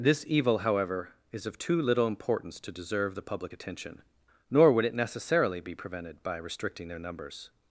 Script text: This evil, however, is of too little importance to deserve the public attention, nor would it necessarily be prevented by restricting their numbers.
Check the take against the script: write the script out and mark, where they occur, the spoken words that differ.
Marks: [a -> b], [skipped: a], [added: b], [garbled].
This evil, however, is of too little importance to deserve the public attention, nor would it necessarily be prevented by restricting their numbers.